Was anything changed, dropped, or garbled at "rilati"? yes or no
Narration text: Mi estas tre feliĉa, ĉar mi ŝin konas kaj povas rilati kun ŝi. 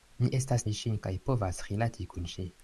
no